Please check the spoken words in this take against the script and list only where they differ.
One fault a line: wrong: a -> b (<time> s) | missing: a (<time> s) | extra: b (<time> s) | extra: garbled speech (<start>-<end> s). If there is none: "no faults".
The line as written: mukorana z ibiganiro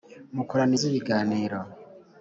no faults